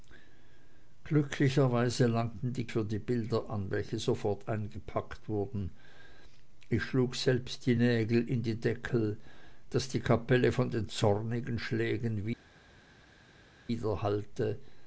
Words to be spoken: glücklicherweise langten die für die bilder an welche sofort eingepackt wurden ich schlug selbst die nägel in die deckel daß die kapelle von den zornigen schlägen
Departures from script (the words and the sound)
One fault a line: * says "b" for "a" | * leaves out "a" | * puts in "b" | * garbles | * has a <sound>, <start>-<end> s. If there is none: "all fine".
all fine